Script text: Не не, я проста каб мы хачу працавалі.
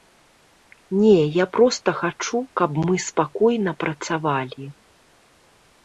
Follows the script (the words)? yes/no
no